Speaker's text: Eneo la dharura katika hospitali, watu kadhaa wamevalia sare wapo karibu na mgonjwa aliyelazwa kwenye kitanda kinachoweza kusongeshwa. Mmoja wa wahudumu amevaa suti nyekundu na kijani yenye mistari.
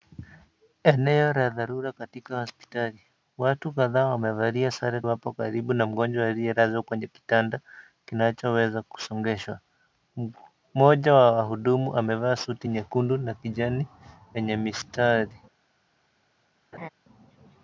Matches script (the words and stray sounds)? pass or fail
fail